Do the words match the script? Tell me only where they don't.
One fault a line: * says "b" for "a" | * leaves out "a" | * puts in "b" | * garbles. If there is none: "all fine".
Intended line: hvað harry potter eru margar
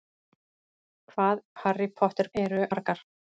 all fine